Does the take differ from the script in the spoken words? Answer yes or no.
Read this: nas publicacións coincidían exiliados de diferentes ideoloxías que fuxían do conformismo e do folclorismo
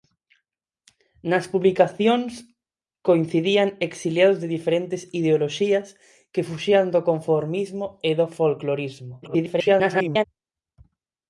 yes